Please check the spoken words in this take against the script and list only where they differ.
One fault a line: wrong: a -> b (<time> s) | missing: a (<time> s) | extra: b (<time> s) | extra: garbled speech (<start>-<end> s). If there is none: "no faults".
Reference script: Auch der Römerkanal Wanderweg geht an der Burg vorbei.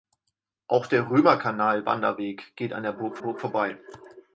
extra: Burg (3.2 s)